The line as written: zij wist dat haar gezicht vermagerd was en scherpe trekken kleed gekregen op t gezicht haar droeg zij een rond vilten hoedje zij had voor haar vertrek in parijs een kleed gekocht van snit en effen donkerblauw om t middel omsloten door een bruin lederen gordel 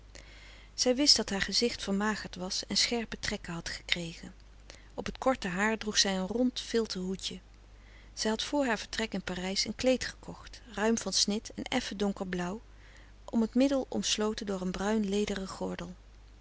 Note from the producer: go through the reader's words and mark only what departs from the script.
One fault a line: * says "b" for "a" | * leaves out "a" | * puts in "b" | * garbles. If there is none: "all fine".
* says "had" for "kleed"
* says "korte" for "gezicht"
* puts in "ruim"